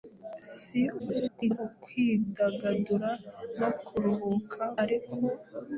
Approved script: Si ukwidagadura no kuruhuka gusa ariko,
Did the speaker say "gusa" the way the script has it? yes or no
no